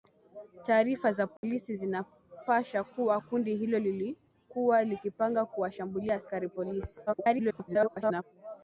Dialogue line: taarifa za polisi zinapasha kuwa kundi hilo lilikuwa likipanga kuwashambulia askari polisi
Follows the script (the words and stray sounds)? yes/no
no